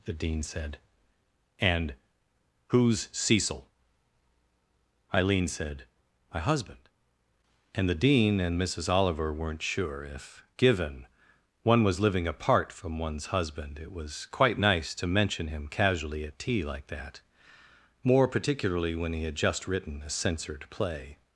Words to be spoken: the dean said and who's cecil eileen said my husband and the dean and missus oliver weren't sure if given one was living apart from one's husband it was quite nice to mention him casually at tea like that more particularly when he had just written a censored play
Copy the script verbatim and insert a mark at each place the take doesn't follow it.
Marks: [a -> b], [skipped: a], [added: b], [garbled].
the dean said and who's cecil eileen said my husband and the dean and missus oliver weren't sure if given one was living apart from one's husband it was quite nice to mention him casually at tea like that more particularly when he had just written a censored play